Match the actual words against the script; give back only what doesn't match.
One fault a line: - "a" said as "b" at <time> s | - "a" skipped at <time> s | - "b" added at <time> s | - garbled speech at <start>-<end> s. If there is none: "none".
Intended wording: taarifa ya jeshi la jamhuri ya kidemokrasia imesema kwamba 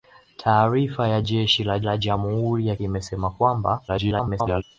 - "la" added at 1.8 s
- "kidemokrasia" skipped at 2.7 s
- garbled speech at 3.9-4.6 s